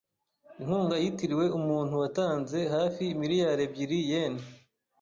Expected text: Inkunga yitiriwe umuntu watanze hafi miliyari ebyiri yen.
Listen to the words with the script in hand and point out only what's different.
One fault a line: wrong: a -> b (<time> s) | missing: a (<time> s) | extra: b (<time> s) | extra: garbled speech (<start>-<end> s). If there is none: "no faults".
no faults